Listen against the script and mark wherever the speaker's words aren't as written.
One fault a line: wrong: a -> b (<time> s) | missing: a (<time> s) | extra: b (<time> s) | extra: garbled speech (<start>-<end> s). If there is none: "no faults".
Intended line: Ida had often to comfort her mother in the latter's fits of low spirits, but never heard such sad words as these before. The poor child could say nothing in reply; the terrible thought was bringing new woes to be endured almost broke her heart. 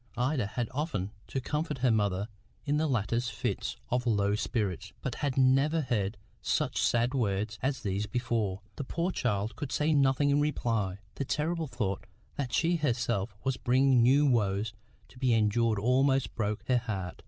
extra: had (5.2 s)
extra: that she herself (12.4 s)